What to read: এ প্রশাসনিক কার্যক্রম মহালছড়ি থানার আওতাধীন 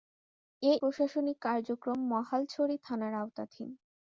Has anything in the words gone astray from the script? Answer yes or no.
no